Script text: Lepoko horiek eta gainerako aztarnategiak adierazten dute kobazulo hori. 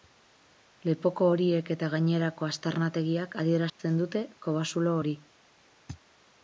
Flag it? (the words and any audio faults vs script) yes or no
yes